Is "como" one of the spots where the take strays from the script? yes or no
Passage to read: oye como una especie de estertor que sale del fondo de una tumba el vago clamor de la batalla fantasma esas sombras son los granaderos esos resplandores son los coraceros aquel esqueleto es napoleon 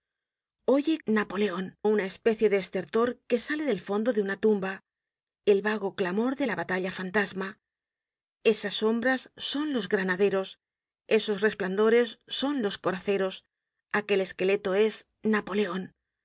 yes